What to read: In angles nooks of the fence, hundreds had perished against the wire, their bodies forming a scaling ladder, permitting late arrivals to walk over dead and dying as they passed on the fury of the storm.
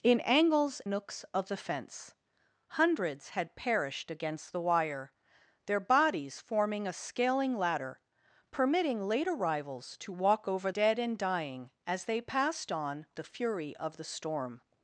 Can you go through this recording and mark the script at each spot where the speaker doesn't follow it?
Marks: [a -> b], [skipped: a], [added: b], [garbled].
In angles nooks of the fence, hundreds had perished against the wire, their bodies forming a scaling ladder, permitting late arrivals to walk over dead and dying as they passed on the fury of the storm.